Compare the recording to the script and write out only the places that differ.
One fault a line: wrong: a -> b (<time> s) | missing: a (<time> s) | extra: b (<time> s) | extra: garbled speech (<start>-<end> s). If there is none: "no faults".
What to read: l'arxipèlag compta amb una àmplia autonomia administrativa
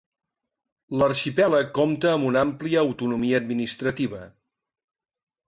no faults